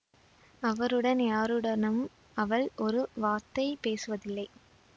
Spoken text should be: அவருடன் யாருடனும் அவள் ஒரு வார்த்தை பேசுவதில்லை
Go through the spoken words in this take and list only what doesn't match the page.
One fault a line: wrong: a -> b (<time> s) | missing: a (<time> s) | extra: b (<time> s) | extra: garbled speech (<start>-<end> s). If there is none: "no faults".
no faults